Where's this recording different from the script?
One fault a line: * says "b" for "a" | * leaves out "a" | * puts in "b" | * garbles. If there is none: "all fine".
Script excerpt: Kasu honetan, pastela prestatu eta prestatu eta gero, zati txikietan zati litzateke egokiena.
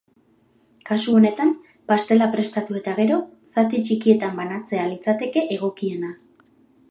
* leaves out "prestatu eta"
* says "banatzea" for "zati"